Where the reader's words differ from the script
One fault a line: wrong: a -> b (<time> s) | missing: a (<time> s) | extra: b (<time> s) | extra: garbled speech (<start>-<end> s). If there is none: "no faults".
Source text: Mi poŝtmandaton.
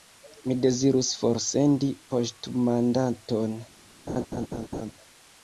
extra: dezirus forsendi (0.6 s)